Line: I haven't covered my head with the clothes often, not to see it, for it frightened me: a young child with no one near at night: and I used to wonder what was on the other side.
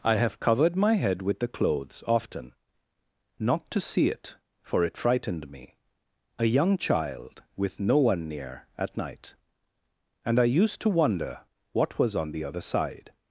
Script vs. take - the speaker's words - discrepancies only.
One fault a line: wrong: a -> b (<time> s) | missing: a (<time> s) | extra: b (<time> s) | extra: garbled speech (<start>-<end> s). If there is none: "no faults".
wrong: haven't -> have (0.1 s)